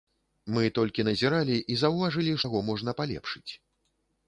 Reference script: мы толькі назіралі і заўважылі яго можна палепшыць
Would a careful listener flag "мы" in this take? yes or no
no